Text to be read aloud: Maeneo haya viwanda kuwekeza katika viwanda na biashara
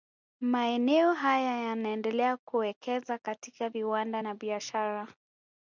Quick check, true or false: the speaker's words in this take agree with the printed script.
false